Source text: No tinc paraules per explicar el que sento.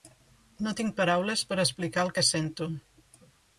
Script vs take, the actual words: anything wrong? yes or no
no